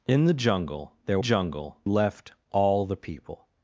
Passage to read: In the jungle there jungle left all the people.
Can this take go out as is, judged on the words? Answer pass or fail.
pass